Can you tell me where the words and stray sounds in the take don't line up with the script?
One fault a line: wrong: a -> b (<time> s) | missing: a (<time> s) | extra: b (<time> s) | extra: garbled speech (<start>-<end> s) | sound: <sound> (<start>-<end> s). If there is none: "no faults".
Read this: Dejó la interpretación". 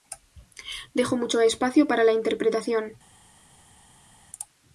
extra: mucho espacio para (1.1 s)